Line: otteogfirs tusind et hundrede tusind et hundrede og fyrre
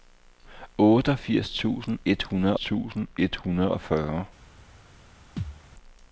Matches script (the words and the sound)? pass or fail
fail